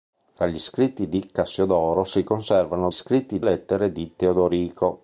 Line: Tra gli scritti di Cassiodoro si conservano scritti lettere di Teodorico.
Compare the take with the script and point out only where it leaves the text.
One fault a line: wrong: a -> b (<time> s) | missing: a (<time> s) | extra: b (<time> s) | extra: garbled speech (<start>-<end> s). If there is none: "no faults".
no faults